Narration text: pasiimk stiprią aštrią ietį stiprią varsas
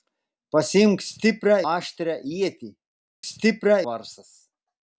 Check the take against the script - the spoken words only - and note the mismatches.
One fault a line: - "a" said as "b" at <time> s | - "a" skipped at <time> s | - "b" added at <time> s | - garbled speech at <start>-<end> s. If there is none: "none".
none